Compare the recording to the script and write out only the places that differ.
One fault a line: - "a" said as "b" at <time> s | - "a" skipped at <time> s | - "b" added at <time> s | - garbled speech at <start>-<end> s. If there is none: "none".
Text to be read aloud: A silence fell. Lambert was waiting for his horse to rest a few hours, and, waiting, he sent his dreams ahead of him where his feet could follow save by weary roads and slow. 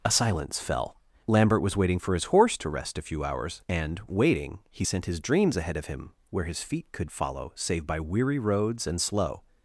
none